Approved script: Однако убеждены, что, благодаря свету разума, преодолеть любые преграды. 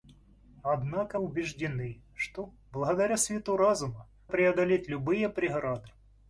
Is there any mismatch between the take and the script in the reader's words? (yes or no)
no